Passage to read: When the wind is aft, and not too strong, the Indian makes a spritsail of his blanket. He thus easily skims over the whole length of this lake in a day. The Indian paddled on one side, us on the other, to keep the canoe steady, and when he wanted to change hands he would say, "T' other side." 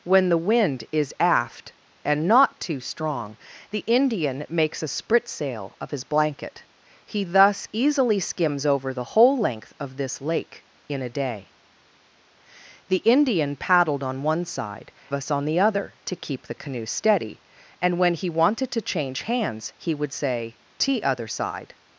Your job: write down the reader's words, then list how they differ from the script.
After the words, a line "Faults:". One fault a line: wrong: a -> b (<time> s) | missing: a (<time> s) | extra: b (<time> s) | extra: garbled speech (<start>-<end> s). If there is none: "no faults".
When the wind is aft, and not too strong, the Indian makes a spritsail of his blanket. He thus easily skims over the whole length of this lake in a day. The Indian paddled on one side, us on the other, to keep the canoe steady, and when he wanted to change hands he would say, "T' other side."
Faults:
no faults